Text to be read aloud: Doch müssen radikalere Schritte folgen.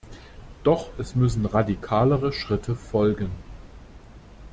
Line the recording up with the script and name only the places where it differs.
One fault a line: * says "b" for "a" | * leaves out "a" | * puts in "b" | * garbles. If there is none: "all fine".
* puts in "es"